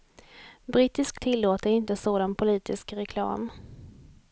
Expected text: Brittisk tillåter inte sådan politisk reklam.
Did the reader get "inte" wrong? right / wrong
right